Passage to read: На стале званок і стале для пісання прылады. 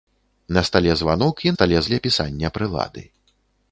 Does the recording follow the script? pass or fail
pass